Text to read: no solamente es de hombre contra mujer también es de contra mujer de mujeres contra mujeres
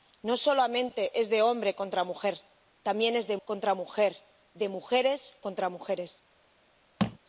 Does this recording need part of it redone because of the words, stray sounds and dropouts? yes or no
yes